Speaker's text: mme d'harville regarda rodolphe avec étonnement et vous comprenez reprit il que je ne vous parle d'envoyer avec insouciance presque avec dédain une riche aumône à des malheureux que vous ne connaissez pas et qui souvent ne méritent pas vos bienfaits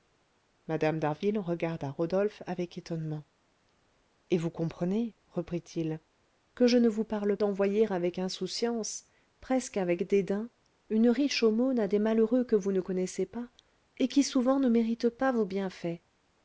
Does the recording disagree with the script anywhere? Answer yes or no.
no